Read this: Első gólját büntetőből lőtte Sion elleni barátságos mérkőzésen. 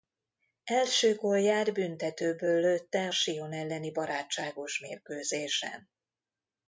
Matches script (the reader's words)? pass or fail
pass